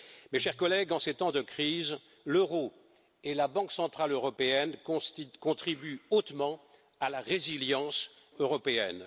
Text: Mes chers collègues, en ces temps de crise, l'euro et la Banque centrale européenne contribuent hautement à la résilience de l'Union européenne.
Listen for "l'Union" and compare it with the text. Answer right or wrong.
wrong